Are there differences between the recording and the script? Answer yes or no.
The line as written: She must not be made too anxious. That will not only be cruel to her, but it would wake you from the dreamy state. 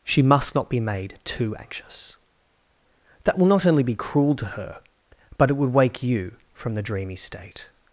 no